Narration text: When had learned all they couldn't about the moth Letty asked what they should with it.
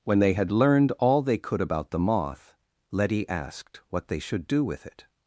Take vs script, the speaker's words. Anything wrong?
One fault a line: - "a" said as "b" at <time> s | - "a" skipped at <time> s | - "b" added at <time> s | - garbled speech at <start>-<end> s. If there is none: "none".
- "they" added at 0.2 s
- "couldn't" said as "could" at 1.4 s
- "do" added at 4.5 s